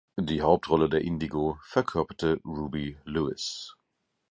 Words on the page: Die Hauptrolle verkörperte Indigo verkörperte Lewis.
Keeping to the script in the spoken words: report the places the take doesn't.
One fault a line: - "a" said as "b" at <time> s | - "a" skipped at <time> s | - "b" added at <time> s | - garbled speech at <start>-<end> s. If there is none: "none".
- "verkörperte" said as "der" at 0.9 s
- "Ruby" added at 2.4 s